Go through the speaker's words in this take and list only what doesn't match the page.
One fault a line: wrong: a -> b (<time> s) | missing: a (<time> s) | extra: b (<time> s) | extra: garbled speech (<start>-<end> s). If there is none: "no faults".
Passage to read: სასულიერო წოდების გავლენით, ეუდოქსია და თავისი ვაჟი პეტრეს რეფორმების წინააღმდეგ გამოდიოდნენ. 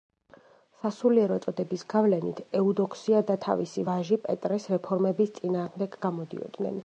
no faults